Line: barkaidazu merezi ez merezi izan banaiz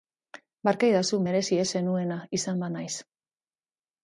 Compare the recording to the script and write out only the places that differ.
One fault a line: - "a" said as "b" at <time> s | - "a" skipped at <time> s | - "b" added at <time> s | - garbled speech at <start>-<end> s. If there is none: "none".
- "merezi" said as "zenuena" at 1.7 s